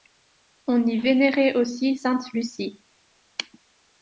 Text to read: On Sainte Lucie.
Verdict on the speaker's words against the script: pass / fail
fail